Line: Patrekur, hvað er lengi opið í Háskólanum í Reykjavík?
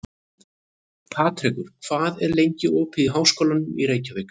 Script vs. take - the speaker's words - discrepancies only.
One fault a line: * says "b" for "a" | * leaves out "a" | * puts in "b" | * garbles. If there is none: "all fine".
all fine